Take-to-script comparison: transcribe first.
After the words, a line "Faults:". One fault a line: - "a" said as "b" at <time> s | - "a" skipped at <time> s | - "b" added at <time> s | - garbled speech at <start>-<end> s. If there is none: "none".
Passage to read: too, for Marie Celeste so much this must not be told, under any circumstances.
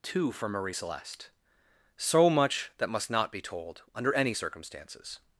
too, for Marie Celeste so much that must not be told, under any circumstances.
Faults:
- "this" said as "that" at 2.8 s